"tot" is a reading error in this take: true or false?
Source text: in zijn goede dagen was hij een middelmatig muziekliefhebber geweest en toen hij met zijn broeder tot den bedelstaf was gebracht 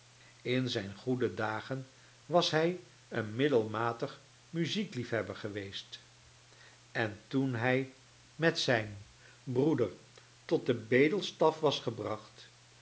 false